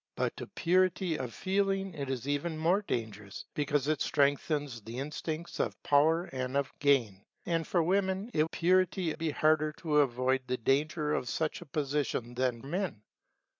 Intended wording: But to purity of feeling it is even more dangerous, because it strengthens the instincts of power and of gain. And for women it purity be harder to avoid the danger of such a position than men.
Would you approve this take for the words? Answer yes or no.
yes